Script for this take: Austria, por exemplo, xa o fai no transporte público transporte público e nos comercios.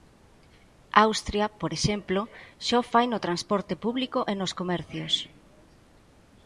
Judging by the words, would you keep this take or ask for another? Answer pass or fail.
fail